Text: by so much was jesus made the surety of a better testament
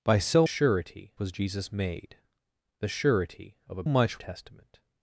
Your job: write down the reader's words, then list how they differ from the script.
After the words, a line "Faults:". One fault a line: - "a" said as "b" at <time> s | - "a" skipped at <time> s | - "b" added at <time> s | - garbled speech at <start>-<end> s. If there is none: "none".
by so surety was jesus made the surety of a much testament
Faults:
- "much" said as "surety" at 0.4 s
- "better" said as "much" at 3.9 s